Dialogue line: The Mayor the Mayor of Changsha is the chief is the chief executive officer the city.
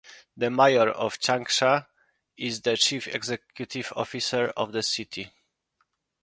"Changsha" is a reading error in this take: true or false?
false